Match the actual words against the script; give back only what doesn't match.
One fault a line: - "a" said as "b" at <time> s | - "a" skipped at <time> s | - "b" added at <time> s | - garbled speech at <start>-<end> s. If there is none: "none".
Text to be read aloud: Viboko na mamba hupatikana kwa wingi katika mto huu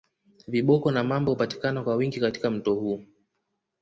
none